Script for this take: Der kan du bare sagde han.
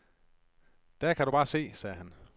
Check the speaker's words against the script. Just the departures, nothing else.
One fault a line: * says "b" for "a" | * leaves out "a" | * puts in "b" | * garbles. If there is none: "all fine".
* puts in "se"